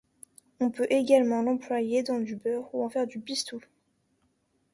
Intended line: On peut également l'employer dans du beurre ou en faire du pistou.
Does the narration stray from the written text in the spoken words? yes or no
no